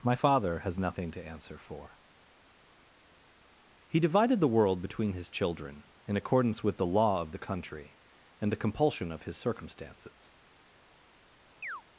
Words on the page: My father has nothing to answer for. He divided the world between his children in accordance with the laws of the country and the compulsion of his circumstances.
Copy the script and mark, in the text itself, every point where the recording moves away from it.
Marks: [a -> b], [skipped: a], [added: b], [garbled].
My father has nothing to answer for. He divided the world between his children in accordance with the [laws -> law] of the country and the compulsion of his circumstances.